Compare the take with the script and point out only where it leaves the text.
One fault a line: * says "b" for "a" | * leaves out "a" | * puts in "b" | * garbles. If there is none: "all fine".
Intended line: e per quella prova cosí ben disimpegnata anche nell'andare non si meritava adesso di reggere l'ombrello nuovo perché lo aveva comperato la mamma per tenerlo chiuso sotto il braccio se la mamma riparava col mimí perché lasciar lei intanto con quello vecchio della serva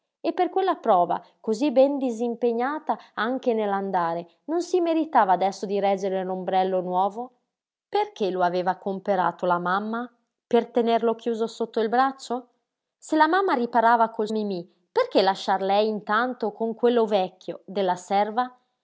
all fine